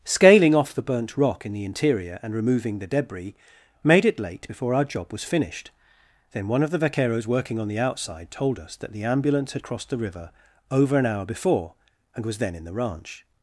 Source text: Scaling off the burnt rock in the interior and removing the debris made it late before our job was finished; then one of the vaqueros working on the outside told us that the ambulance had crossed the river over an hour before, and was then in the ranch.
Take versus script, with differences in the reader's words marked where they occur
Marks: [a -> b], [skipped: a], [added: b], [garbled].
Scaling off the burnt rock in the interior and removing the debris made it late before our job was finished; then one of the vaqueros working on the outside told us that the ambulance had crossed the river over an hour before, and was then in the ranch.